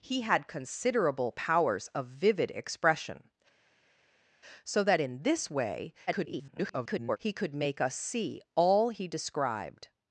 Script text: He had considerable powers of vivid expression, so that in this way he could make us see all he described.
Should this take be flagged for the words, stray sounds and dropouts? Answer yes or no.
yes